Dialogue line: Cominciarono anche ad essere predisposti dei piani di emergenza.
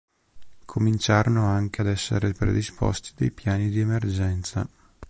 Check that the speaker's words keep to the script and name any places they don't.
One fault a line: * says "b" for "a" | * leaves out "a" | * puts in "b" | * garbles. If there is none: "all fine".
all fine